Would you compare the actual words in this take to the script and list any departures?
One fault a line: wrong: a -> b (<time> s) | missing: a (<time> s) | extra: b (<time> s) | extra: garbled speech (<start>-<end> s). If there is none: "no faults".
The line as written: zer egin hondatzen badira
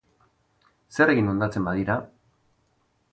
no faults